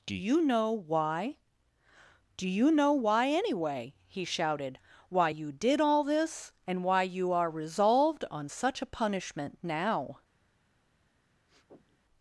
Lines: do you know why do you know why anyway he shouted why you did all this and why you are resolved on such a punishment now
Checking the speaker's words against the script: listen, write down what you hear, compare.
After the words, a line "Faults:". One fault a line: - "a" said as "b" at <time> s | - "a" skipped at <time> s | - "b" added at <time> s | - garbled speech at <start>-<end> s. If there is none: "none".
do you know why do you know why anyway he shouted why you did all this and why you are resolved on such a punishment now
Faults:
none